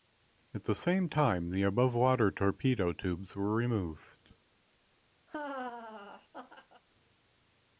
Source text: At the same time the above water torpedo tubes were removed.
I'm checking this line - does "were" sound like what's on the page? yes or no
yes